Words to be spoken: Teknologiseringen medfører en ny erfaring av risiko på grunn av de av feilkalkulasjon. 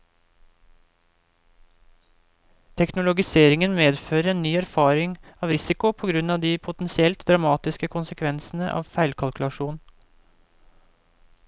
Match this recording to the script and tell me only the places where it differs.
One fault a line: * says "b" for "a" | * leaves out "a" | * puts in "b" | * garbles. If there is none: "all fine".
* puts in "potensielt dramatiske konsekvensene"